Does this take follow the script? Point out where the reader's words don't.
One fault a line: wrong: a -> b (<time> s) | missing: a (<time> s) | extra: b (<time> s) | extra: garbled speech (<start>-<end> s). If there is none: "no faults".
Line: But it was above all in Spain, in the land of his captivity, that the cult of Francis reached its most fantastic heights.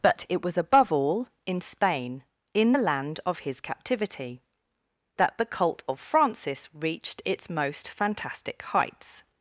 no faults